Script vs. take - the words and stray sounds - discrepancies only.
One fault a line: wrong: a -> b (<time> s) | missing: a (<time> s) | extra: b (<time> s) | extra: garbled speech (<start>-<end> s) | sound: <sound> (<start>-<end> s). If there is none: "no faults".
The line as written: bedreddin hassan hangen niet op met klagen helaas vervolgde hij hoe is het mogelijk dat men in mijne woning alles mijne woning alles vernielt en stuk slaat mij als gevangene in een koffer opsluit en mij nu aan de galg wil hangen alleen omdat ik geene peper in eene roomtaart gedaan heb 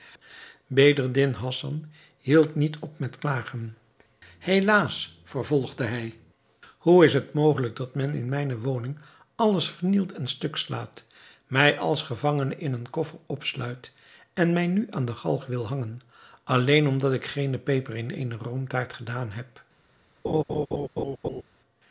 wrong: hangen -> hield (2.2 s)
missing: mijne woning alles (9.7 s)
sound: laugh (20.2-21.4 s)